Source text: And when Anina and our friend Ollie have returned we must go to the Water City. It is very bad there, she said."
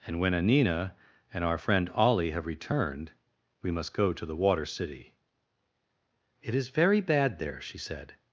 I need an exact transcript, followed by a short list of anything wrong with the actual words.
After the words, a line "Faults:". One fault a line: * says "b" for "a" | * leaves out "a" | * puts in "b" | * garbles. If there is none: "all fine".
And when Anina and our friend Ollie have returned we must go to the Water City. It is very bad there, she said."
Faults:
all fine